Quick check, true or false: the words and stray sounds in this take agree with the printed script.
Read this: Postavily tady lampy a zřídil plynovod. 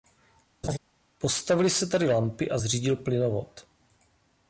false